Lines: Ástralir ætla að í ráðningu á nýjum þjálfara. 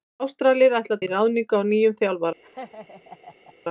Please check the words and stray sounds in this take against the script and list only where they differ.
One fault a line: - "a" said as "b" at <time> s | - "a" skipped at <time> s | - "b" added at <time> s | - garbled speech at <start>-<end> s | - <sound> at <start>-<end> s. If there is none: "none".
- laugh at 2.4-3.5 s